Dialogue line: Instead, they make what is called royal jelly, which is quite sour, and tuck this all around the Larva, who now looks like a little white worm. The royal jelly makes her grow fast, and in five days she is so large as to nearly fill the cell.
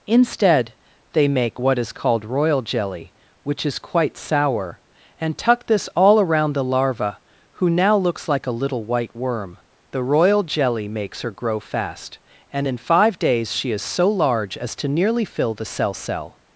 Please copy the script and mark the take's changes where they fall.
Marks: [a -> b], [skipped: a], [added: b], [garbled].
Instead, they make what is called royal jelly, which is quite sour, and tuck this all around the Larva, who now looks like a little white worm. The royal jelly makes her grow fast, and in five days she is so large as to nearly fill the cell. [added: cell]